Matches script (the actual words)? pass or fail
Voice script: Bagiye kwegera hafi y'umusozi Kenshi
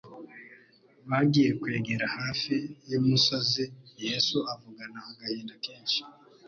fail